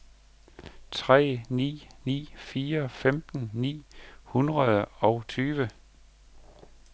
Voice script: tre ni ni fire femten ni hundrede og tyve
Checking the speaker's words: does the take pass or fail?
pass